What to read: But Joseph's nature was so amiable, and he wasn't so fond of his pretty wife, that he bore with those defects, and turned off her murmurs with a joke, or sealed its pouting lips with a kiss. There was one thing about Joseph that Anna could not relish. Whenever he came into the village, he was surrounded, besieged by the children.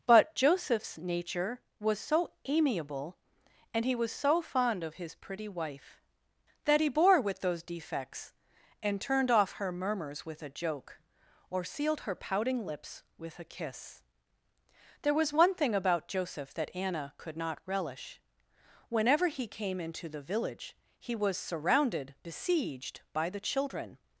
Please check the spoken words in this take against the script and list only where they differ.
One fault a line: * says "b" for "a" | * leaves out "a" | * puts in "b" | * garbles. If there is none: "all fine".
* says "was" for "wasn't"
* says "her" for "its"